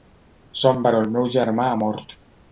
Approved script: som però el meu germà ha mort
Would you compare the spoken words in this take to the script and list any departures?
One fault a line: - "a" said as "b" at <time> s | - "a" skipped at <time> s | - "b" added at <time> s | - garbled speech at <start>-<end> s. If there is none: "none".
none